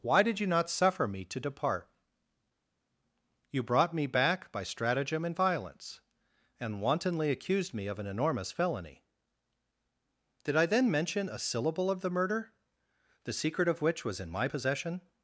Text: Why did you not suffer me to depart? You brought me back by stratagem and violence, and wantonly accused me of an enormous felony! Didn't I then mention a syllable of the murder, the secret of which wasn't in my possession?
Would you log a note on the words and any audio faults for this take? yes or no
yes